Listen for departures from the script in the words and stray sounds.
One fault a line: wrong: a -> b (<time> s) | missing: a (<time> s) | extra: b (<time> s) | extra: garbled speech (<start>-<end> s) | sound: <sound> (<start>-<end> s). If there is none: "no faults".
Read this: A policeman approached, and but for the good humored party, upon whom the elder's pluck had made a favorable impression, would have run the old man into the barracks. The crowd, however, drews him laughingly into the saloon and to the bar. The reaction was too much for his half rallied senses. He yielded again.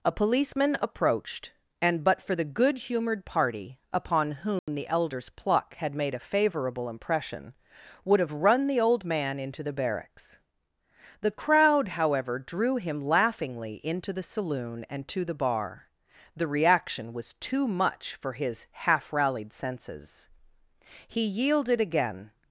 sound: dropout (4.6-4.7 s)
wrong: drews -> drew (12.4 s)